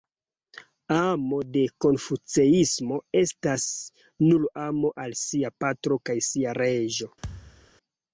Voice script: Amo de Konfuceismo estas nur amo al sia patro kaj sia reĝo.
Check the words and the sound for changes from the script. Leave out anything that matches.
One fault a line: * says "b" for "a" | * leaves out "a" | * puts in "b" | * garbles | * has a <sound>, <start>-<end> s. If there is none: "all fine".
* has a thud, 7.2-7.7 s